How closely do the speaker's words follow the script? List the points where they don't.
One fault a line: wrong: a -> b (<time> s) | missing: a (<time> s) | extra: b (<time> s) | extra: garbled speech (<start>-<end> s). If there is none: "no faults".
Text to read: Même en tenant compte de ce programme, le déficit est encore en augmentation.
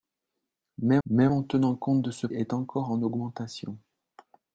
extra: même (1.1 s)
missing: programme le déficit (2.3 s)